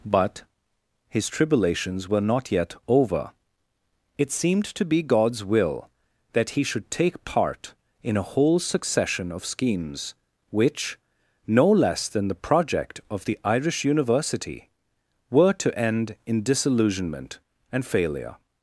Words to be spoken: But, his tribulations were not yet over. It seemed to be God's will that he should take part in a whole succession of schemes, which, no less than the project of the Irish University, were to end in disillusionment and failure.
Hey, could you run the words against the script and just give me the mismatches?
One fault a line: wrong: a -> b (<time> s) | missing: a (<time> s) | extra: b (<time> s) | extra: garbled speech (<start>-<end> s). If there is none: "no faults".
no faults